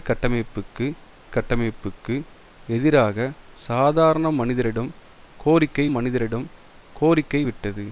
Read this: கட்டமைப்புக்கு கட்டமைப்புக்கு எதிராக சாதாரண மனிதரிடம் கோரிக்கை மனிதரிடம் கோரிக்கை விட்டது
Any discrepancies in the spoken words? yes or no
no